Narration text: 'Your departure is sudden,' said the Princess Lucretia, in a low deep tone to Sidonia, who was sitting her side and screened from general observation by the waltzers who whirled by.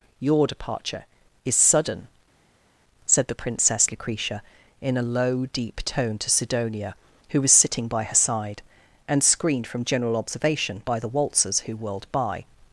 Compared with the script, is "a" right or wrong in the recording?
right